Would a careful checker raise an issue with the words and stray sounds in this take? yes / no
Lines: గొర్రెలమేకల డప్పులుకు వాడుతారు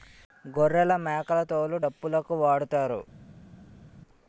yes